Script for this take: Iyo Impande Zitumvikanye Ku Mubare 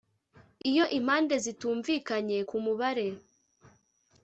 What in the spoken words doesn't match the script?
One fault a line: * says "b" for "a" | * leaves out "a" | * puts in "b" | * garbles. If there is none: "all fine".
all fine